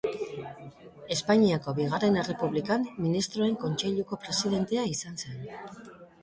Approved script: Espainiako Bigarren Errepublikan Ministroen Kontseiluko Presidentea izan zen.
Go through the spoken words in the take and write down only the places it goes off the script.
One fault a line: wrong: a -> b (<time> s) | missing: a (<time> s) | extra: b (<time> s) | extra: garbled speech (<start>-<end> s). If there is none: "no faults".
no faults